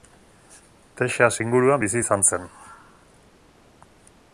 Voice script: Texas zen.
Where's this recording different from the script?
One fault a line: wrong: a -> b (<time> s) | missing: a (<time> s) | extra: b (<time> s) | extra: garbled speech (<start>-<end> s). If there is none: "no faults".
extra: inguruan bizi izan (1.5 s)